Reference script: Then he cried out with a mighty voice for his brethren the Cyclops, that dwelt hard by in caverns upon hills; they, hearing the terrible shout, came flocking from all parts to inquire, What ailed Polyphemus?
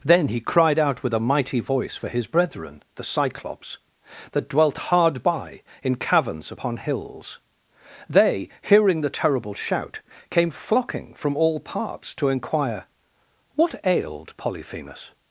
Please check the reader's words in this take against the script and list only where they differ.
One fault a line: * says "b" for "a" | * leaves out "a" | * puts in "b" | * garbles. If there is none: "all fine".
all fine